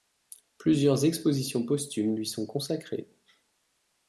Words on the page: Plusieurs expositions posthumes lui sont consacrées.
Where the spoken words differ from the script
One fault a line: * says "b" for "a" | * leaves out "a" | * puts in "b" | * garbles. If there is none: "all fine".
all fine